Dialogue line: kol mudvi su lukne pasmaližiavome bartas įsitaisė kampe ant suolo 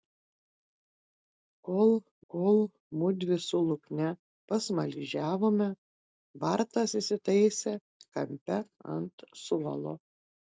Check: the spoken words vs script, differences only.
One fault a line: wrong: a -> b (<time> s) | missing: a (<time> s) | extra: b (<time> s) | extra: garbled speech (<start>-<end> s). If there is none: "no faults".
extra: kol (2.3 s)